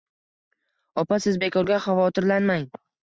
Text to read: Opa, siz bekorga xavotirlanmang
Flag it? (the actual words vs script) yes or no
no